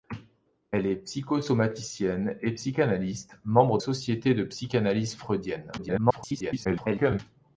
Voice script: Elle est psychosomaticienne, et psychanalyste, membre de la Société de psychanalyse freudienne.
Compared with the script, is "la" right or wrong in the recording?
wrong